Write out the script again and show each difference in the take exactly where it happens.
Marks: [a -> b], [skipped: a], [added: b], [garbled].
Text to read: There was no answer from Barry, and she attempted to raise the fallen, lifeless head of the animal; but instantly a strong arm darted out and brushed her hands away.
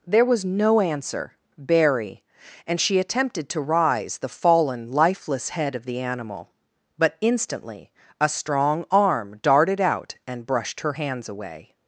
There was no answer [skipped: from] Barry, and she attempted to [raise -> rise] the fallen, lifeless head of the animal; but instantly a strong arm darted out and brushed her hands away.